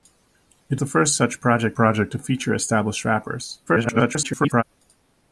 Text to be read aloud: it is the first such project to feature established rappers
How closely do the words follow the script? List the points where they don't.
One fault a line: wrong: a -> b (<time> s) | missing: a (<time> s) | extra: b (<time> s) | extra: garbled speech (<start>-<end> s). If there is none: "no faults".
missing: is (0.8 s)
extra: project (1.7 s)
extra: garbled speech (3.7-4.6 s)